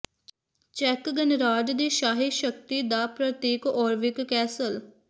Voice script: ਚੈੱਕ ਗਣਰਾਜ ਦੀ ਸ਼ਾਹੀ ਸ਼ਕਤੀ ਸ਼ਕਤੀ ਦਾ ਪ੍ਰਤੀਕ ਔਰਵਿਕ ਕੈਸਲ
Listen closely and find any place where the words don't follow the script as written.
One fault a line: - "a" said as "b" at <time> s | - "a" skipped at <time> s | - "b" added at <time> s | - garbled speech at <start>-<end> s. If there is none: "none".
- "ਸ਼ਕਤੀ" skipped at 2.8 s